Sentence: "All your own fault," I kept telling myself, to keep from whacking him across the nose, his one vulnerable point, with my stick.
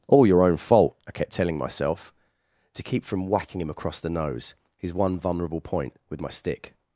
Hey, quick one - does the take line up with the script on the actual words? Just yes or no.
yes